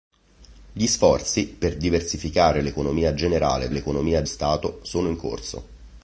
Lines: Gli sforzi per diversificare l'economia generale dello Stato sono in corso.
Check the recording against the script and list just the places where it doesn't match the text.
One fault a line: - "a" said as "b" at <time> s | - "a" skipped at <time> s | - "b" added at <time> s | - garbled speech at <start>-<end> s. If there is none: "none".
- "dello" said as "l'economia" at 3.7 s